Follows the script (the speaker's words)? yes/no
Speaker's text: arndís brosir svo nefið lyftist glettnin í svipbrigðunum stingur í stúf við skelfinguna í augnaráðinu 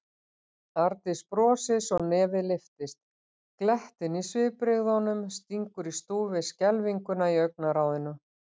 yes